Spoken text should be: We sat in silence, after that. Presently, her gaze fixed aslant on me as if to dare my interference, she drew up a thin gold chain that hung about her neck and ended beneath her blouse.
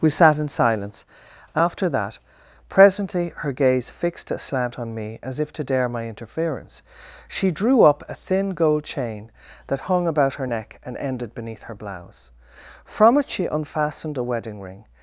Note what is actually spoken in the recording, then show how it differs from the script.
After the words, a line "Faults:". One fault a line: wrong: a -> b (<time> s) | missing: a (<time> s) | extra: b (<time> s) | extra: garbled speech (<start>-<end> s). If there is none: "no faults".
We sat in silence, after that. Presently, her gaze fixed aslant on me as if to dare my interference, she drew up a thin gold chain that hung about her neck and ended beneath her blouse. From it she unfastened a wedding ring
Faults:
extra: From it she unfastened a wedding ring (12.8 s)